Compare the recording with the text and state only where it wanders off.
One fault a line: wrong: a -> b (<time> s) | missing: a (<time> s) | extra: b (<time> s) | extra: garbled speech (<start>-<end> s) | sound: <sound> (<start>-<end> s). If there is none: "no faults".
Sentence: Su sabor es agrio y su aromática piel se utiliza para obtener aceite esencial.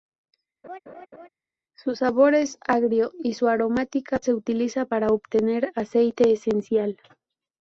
sound: laugh (0.6-1.3 s)
missing: piel (4.2 s)